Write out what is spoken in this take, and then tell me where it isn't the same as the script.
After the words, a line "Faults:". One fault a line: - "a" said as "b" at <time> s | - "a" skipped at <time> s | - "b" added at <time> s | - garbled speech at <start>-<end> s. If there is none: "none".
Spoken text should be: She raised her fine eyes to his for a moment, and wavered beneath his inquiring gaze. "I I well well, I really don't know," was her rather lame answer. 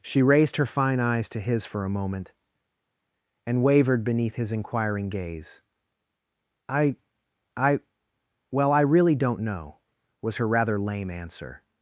She raised her fine eyes to his for a moment, and wavered beneath his inquiring gaze. "I I well, I really don't know," was her rather lame answer.
Faults:
- "well" skipped at 8.7 s